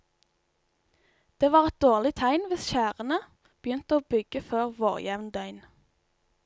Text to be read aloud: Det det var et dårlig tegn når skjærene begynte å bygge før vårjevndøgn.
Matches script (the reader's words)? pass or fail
fail